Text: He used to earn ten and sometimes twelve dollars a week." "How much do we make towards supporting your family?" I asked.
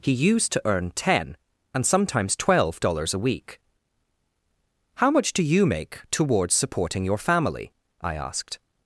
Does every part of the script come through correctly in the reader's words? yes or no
no